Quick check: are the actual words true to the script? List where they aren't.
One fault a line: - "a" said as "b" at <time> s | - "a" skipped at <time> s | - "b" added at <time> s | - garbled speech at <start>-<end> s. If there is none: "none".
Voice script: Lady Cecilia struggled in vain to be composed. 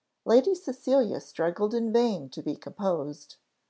none